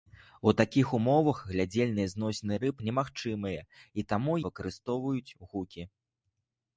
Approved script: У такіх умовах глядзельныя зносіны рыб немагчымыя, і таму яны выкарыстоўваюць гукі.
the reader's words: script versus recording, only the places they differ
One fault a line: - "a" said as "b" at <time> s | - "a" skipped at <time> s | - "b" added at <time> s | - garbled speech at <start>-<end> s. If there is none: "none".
- "яны" skipped at 4.4 s